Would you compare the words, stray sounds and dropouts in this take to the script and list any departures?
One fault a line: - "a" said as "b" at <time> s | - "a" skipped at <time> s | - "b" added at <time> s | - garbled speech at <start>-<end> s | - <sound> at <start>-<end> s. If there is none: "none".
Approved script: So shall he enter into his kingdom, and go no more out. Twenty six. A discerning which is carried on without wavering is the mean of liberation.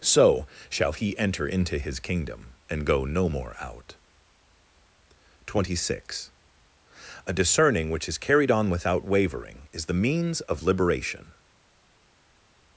- "mean" said as "means" at 9.9 s